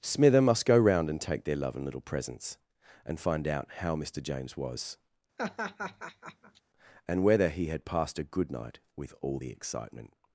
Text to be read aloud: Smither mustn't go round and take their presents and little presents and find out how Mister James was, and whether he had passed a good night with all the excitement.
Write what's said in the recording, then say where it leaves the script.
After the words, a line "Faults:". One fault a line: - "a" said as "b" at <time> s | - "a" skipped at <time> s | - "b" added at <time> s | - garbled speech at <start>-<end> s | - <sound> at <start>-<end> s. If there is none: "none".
Smither must go round and take their love and little presents and find out how Mister James was, and whether he had passed a good night with all the excitement.
Faults:
- "mustn't" said as "must" at 0.4 s
- "presents" said as "love" at 1.6 s
- laugh at 5.4-6.6 s